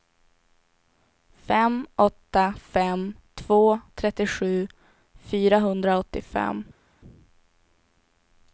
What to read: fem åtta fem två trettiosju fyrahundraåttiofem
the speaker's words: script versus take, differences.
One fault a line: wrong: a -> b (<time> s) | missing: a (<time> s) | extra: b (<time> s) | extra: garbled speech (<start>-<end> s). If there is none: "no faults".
no faults